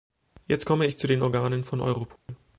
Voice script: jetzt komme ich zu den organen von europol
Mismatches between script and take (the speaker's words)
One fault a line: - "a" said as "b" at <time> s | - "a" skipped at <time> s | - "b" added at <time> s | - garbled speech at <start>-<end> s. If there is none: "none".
none